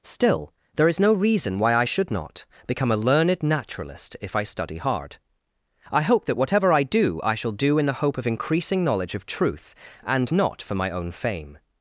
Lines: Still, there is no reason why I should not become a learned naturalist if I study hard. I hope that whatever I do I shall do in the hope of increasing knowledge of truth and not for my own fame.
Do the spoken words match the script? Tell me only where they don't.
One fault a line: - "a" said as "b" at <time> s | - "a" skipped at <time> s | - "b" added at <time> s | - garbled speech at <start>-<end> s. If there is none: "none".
none